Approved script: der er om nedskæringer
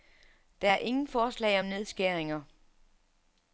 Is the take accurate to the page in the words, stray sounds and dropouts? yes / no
no